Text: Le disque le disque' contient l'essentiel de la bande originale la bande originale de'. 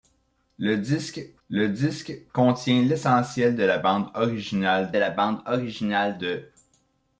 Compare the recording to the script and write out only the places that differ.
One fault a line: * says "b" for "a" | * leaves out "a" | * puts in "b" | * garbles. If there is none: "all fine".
all fine